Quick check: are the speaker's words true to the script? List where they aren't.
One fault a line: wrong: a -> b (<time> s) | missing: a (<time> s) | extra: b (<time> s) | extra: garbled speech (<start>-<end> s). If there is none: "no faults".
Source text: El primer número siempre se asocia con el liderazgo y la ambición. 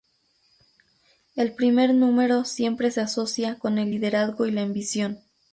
no faults